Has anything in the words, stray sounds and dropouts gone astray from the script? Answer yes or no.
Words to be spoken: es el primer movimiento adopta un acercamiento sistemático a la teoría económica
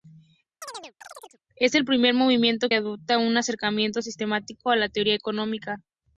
yes